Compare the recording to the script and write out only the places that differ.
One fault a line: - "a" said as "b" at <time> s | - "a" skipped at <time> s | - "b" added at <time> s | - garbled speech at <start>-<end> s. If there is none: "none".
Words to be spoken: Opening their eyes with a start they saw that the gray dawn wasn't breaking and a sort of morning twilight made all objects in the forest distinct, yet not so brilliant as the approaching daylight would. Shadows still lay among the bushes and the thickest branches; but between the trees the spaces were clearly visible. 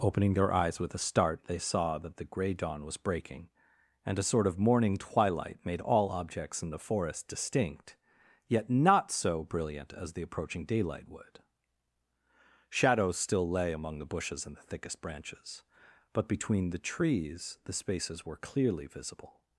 - "wasn't" said as "was" at 2.9 s